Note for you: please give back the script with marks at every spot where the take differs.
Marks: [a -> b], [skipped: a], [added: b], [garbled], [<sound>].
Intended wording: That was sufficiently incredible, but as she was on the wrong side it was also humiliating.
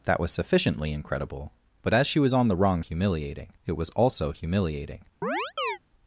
That was sufficiently incredible, but as she was on the wrong [side -> humiliating] it was also humiliating. [chirp]